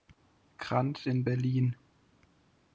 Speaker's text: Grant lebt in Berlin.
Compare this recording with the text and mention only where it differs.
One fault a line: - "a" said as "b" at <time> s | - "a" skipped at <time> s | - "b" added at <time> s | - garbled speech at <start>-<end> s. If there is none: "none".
- "lebt" skipped at 1.1 s